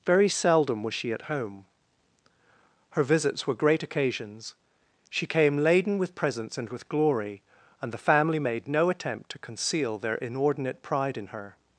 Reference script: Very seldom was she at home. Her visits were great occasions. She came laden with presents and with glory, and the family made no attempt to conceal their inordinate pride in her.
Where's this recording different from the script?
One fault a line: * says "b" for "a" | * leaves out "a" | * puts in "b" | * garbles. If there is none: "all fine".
all fine